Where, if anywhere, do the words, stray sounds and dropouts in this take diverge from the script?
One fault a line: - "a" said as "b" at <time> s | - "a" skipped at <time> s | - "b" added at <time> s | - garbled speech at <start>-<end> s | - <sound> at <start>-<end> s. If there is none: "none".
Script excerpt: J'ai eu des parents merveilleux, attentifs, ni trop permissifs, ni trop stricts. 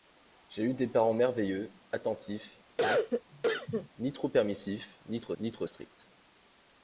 - cough at 2.8-3.9 s
- "ni trop" added at 5.4 s